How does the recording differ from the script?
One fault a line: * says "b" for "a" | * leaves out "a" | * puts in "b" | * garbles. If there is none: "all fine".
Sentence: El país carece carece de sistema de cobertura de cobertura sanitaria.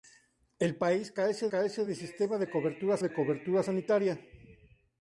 all fine